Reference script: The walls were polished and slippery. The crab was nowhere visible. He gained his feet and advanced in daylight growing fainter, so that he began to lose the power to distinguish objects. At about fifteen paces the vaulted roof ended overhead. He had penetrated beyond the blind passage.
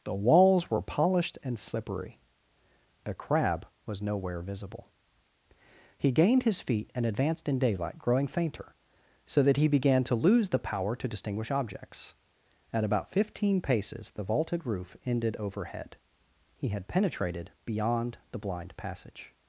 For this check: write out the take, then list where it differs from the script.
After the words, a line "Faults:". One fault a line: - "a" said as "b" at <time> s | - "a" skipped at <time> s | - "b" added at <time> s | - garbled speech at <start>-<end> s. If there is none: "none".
The walls were polished and slippery. A crab was nowhere visible. He gained his feet and advanced in daylight growing fainter, so that he began to lose the power to distinguish objects. At about fifteen paces the vaulted roof ended overhead. He had penetrated beyond the blind passage.
Faults:
- "The" said as "A" at 3.0 s